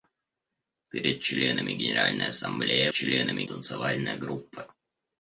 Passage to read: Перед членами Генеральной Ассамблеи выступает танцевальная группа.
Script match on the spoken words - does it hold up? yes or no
no